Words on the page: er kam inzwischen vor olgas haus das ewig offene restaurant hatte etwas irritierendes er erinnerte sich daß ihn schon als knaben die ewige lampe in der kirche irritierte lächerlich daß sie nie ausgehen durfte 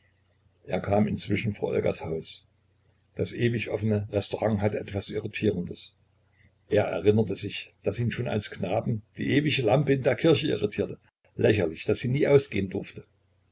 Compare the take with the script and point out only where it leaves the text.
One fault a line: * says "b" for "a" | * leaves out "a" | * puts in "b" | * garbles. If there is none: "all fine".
all fine